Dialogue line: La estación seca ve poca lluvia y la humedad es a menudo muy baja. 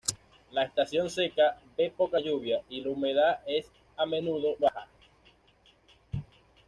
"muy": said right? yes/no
no